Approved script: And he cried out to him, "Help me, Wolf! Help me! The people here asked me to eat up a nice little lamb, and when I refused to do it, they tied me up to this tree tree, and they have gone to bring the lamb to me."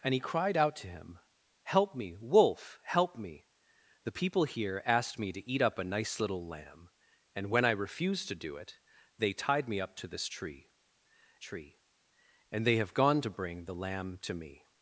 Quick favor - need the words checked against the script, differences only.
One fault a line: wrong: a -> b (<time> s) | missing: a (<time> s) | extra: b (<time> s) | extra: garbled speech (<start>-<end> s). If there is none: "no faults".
no faults